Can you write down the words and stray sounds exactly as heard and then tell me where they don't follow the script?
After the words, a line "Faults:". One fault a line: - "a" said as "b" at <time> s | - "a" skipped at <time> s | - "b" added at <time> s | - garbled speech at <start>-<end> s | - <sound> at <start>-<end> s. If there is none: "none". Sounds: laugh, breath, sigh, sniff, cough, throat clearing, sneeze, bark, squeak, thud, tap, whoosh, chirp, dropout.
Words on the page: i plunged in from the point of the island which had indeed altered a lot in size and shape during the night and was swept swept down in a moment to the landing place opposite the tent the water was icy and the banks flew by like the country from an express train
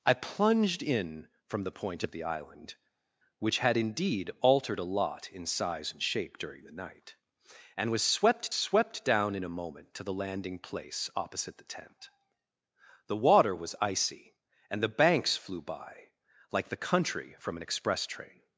i plunged in from the point of the island which had indeed altered a lot in size and shape during the night and was swept swept down in a moment to the landing place opposite the tent the water was icy and the banks flew by like the country from an express train
Faults:
none